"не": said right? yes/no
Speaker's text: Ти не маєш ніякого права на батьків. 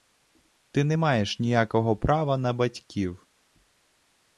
yes